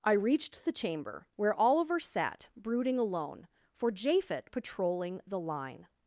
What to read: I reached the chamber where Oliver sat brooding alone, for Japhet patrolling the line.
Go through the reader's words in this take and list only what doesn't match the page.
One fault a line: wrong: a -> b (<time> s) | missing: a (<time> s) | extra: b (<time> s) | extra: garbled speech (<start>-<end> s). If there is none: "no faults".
no faults